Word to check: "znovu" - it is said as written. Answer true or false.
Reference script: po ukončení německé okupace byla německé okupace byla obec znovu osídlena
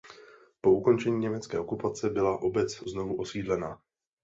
true